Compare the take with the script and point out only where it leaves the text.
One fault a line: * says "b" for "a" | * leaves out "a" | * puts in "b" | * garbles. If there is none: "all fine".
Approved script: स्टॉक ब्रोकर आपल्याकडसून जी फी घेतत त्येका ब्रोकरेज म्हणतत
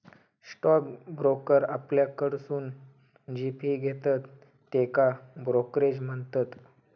all fine